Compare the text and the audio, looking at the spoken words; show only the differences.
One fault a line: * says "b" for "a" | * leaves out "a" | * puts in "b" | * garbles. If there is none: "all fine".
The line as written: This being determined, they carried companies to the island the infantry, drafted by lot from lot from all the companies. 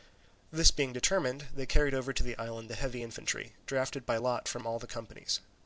* says "over" for "companies"
* puts in "heavy"
* leaves out "lot from"